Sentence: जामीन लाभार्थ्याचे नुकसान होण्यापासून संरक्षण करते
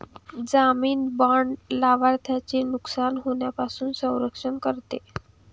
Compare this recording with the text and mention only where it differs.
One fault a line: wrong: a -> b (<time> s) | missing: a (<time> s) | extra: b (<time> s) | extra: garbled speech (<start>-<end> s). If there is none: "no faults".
extra: बाँड (1.2 s)